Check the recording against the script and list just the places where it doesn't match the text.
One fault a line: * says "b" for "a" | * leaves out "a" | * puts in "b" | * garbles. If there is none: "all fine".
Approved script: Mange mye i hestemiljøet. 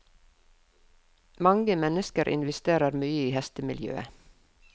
* puts in "mennesker investerer"